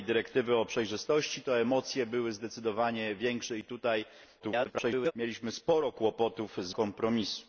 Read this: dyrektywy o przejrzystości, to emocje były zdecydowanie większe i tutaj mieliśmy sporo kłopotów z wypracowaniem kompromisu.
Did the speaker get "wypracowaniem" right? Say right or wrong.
wrong